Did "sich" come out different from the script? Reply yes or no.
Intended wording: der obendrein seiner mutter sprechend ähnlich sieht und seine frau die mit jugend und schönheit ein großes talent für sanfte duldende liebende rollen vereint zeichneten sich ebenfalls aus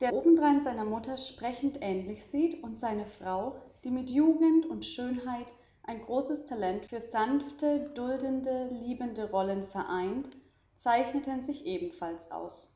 no